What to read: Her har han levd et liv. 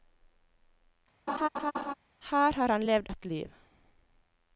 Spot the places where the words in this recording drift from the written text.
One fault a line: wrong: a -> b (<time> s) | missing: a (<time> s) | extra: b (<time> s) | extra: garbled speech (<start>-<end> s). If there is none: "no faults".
no faults